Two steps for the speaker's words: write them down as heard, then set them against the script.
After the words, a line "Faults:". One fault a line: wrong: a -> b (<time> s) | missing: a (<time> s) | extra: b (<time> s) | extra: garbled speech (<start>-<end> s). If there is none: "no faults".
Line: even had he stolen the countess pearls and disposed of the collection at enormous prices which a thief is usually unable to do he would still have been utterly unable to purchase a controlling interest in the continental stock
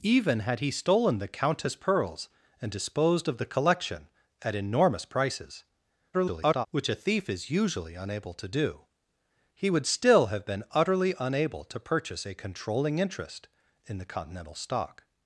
even had he stolen the countess pearls and disposed of the collection at enormous prices [garbled] which a thief is usually unable to do he would still have been utterly unable to purchase a controlling interest in the continental stock
Faults:
extra: garbled speech (6.1-6.7 s)